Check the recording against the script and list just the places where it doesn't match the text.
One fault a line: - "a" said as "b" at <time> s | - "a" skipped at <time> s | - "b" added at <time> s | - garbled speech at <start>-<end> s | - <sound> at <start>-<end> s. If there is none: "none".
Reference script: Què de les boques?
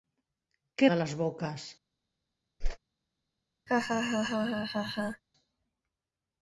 - whoosh at 2.6-2.8 s
- laugh at 3.7-5.2 s